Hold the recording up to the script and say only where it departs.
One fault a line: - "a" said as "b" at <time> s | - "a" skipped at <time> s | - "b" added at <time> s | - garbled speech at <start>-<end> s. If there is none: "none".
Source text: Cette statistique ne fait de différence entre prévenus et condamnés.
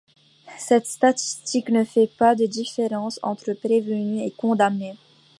- "pas" added at 2.1 s